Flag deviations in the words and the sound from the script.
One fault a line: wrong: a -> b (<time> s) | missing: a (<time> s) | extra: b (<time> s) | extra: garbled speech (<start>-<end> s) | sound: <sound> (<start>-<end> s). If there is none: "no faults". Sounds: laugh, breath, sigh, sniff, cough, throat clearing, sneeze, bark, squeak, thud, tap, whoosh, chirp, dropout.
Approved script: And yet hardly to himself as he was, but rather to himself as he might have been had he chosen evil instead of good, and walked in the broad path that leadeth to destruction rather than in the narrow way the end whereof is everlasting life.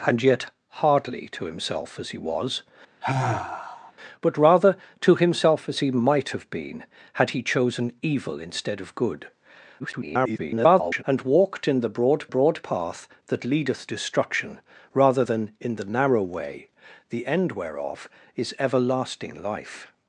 sound: sigh (3.0-3.9 s)
extra: garbled speech (9.8-11.0 s)
extra: broad (12.3 s)
missing: to (13.9 s)